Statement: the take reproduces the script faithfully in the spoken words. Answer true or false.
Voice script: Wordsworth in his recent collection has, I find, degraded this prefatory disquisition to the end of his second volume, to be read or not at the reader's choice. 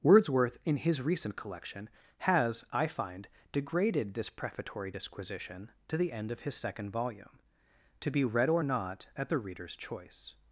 true